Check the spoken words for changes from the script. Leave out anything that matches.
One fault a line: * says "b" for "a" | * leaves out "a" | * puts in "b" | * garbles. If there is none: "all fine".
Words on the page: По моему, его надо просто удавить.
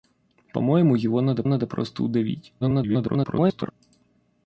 * puts in "надо"
* garbles